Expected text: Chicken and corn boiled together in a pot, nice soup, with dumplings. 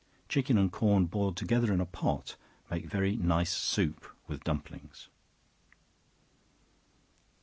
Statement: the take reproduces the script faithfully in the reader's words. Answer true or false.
false